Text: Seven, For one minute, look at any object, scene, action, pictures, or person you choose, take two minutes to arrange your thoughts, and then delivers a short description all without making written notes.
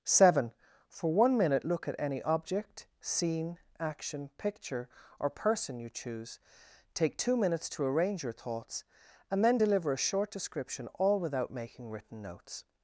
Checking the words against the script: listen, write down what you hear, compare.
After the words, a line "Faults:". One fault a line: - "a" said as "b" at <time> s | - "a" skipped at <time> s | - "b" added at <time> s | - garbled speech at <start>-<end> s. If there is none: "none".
Seven, For one minute, look at any object, scene, action, picture, or person you choose, take two minutes to arrange your thoughts, and then deliver a short description all without making written notes.
Faults:
- "pictures" said as "picture" at 4.4 s
- "delivers" said as "deliver" at 9.6 s